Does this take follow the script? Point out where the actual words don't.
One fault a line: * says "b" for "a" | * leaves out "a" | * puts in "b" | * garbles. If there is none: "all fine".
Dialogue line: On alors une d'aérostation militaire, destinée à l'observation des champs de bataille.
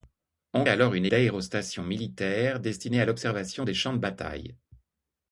all fine